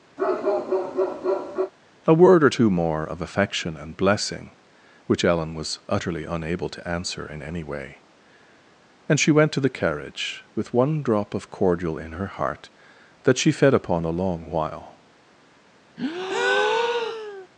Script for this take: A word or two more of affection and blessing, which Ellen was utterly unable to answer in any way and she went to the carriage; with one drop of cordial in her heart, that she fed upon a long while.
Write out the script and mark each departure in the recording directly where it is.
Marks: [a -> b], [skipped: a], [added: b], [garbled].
A word or two more of affection and blessing, which Ellen was utterly unable to answer in any way and she went to the carriage; with one drop of cordial in her heart, that she fed upon a long while.